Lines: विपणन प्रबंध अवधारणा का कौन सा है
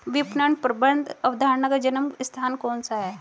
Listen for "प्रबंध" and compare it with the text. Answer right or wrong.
right